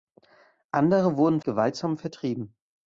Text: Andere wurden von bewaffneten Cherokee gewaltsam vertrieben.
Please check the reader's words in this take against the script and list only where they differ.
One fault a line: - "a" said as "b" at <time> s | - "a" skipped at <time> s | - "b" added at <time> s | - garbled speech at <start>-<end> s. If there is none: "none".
- "von bewaffneten Cherokee" skipped at 1.4 s